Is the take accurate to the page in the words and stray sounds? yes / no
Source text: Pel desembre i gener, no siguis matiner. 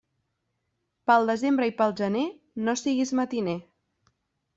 no